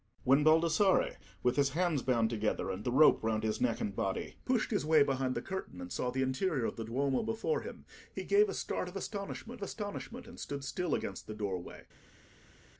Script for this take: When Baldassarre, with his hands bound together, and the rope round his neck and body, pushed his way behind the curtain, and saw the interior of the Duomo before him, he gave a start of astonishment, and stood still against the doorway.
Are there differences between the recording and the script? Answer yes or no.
yes